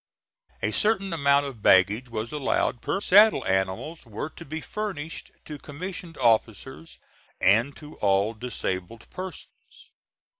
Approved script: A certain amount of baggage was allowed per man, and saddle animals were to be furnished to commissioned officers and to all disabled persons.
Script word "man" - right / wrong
wrong